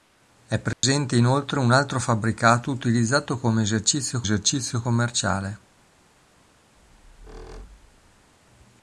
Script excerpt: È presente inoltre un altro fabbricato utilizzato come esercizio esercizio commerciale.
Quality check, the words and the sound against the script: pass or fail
fail